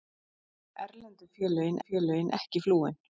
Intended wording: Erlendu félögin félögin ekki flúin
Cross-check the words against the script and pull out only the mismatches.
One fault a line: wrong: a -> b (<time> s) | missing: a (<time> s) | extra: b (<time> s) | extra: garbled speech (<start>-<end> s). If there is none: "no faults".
no faults